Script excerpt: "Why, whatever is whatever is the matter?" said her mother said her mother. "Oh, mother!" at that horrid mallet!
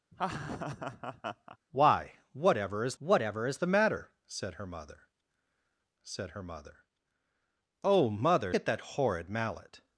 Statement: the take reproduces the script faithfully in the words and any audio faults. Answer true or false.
false